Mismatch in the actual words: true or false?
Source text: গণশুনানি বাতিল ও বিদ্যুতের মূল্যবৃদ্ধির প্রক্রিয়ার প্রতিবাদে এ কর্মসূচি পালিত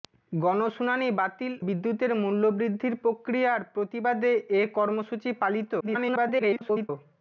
true